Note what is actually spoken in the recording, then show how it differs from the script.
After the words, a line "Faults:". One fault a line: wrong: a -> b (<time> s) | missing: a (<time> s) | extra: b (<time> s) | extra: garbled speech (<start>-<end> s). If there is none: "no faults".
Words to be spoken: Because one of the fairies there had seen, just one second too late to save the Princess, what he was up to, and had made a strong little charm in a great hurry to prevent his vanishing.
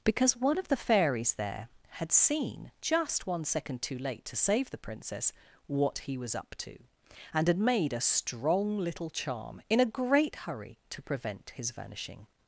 Because one of the fairies there had seen, just one second too late to save the Princess, what he was up to, and had made a strong little charm in a great hurry to prevent his vanishing.
Faults:
no faults